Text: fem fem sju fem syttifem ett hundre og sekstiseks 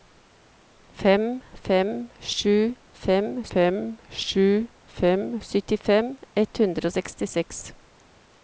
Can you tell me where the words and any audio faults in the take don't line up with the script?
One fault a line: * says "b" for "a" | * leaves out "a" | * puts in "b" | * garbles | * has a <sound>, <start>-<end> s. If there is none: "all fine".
* puts in "fem sju fem"